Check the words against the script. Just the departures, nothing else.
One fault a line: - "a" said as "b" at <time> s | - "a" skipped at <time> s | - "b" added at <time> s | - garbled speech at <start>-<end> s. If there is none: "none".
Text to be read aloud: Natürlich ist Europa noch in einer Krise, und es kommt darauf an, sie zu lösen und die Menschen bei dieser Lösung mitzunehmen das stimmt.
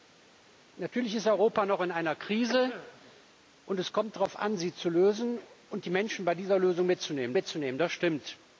- "mitzunehmen" added at 7.3 s